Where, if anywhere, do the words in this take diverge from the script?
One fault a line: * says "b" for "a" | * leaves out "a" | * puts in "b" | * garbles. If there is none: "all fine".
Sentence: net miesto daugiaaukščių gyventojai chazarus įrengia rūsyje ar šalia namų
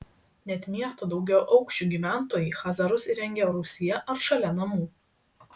all fine